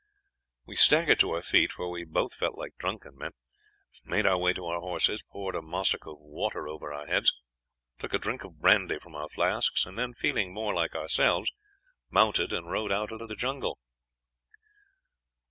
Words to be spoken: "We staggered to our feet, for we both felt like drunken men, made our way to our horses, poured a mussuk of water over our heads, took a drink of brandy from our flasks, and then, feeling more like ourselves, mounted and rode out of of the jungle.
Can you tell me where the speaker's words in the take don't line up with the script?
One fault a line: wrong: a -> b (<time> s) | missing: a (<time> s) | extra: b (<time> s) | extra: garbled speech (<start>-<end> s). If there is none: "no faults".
no faults